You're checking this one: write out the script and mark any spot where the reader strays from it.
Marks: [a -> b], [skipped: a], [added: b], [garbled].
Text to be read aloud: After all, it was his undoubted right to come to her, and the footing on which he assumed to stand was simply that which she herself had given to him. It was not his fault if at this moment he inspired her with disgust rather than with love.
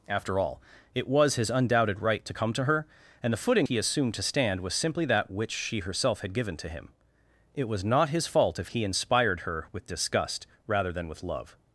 After all, it was his undoubted right to come to her, and the footing [skipped: on which] he assumed to stand was simply that which she herself had given to him. It was not his fault if [skipped: at this moment] he inspired her with disgust rather than with love.